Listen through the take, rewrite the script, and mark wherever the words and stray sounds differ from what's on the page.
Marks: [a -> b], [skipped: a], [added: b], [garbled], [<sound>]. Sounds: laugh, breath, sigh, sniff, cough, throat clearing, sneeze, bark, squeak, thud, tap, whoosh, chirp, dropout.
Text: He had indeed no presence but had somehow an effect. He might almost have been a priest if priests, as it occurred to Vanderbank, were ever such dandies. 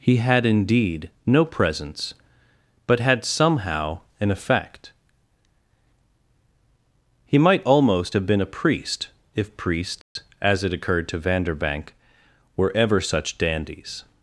He had indeed no presence but had somehow an effect. He might almost have been a priest if priests, [dropout] as it occurred to Vanderbank, were ever such dandies.